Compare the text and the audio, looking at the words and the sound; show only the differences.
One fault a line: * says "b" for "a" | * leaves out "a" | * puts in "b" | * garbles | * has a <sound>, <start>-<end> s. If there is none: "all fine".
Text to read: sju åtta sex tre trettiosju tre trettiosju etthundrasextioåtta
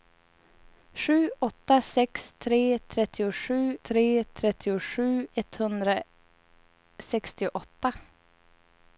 all fine